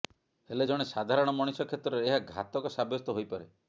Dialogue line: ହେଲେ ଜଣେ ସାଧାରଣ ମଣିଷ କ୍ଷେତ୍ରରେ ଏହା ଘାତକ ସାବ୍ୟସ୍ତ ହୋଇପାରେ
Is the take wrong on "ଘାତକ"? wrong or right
right